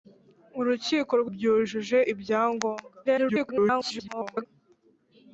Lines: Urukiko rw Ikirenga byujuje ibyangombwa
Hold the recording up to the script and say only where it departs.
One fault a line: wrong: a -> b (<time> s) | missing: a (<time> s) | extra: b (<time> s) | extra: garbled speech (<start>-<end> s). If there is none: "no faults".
missing: Ikirenga (1.3 s)
extra: garbled speech (3.0-4.5 s)